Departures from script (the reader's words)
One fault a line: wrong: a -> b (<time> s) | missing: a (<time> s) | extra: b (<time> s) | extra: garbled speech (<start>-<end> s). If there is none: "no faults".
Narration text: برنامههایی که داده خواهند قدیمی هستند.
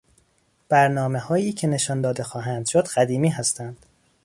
extra: نشان (1.7 s)
extra: شد (2.7 s)